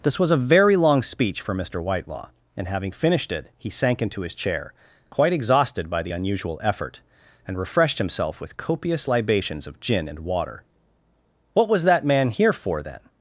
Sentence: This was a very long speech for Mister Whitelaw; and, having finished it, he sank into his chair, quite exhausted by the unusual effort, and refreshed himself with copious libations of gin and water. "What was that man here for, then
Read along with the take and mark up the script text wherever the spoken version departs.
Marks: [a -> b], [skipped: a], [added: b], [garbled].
This was a very long speech for Mister Whitelaw; and, having finished it, he sank into his chair, quite exhausted by the unusual effort, and refreshed himself with copious libations of gin and water. "What was that man here for, then